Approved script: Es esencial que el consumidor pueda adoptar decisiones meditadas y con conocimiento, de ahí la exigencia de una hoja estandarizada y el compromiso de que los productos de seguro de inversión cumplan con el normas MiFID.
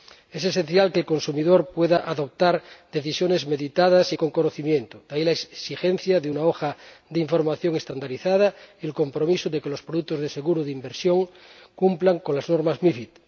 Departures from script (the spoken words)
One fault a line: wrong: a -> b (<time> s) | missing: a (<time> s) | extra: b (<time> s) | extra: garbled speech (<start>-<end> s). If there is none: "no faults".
extra: de información (7.1 s)
wrong: el -> las (12.3 s)